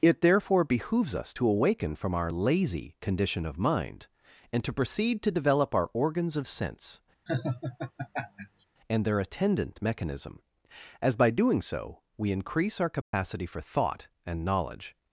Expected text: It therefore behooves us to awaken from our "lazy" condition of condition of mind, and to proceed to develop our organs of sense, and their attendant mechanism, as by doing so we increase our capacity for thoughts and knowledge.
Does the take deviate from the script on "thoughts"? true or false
true